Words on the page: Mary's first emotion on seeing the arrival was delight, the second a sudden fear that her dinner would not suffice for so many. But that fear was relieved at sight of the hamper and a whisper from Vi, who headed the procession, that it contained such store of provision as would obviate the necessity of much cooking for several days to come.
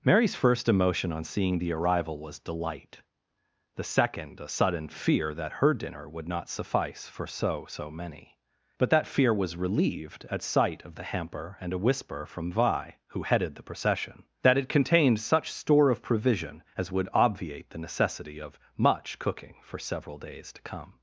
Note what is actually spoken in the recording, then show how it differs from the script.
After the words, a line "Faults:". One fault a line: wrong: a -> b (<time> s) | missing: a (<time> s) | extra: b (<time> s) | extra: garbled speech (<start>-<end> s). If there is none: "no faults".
Mary's first emotion on seeing the arrival was delight, the second a sudden fear that her dinner would not suffice for so so many. But that fear was relieved at sight of the hamper and a whisper from Vi, who headed the procession, that it contained such store of provision as would obviate the necessity of much cooking for several days to come.
Faults:
extra: so (7.7 s)